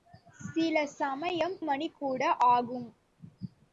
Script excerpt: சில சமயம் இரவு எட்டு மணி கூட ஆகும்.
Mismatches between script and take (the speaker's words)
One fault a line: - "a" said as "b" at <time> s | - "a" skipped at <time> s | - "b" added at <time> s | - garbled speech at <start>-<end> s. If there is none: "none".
- "இரவு எட்டு" skipped at 1.5 s